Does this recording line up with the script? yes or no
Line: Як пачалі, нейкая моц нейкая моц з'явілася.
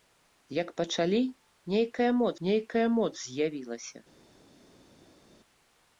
yes